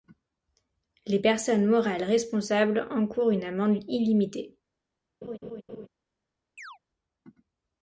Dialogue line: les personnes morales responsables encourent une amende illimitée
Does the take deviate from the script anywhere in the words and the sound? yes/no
yes